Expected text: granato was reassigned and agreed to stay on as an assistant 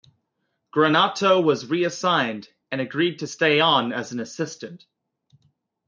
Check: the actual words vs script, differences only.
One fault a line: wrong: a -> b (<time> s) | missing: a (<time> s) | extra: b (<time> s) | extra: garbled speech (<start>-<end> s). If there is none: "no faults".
no faults